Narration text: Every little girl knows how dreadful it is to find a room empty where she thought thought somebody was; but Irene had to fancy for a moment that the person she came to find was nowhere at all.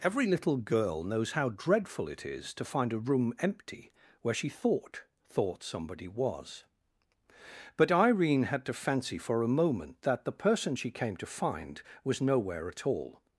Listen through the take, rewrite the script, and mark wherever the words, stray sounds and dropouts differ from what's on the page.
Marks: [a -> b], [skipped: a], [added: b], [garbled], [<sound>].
Every little girl knows how dreadful it is to find a room empty where she thought thought somebody was; but Irene had to fancy for a moment that the person she came to find was nowhere at all.